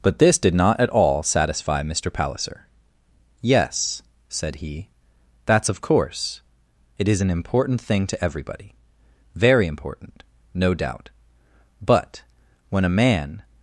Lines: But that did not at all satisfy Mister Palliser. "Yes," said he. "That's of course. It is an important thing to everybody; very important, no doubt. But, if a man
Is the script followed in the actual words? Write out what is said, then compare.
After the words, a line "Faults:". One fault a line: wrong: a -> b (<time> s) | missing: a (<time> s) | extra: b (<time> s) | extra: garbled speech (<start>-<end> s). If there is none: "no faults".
But this did not at all satisfy Mister Palliser. "Yes," said he. "That's of course. It is an important thing to everybody; very important, no doubt. But, when a man
Faults:
wrong: that -> this (0.2 s)
wrong: if -> when (12.7 s)